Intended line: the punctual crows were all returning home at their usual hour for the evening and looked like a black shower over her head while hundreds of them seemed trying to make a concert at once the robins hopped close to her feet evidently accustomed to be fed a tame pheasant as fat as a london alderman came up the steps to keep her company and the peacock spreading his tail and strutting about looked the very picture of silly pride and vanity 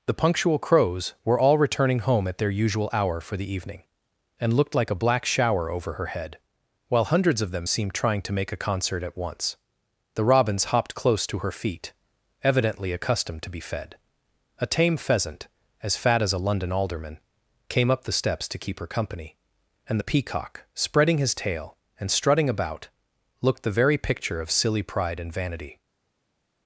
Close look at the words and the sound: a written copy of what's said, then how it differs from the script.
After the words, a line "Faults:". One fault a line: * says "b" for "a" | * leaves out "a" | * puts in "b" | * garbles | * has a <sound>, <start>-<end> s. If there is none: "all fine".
the punctual crows were all returning home at their usual hour for the evening and looked like a black shower over her head while hundreds of them seemed trying to make a concert at once the robins hopped close to her feet evidently accustomed to be fed a tame pheasant as fat as a london alderman came up the steps to keep her company and the peacock spreading his tail and strutting about looked the very picture of silly pride and vanity
Faults:
all fine